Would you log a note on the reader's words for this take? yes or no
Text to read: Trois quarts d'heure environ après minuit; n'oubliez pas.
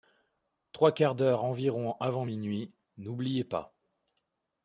yes